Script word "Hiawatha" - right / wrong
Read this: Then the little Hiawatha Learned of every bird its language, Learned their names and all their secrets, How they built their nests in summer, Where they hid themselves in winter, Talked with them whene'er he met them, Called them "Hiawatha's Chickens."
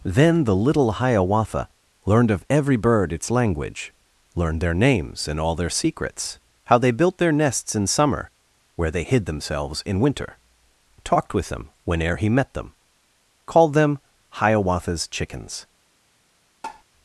right